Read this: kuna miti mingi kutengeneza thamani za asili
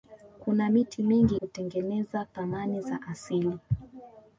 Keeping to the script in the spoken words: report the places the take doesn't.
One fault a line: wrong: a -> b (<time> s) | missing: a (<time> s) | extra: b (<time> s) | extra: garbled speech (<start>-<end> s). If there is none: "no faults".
no faults